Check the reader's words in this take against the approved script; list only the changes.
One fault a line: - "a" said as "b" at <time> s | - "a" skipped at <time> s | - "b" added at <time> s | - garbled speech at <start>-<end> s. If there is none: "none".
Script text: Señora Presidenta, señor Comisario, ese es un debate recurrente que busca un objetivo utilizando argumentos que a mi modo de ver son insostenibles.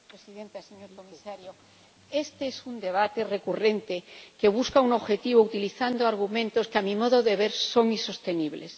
- "ese" said as "este" at 2.2 s